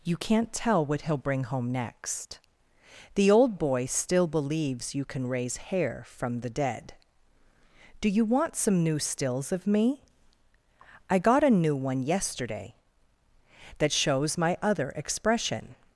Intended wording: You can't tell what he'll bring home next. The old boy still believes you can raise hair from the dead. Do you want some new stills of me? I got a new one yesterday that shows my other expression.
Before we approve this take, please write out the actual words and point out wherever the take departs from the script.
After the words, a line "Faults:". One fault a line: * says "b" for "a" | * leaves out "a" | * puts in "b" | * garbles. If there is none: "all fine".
You can't tell what he'll bring home next. The old boy still believes you can raise hair from the dead. Do you want some new stills of me? I got a new one yesterday that shows my other expression.
Faults:
all fine